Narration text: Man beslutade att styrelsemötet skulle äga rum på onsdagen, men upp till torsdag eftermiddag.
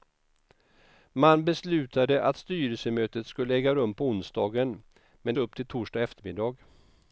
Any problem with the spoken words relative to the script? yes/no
no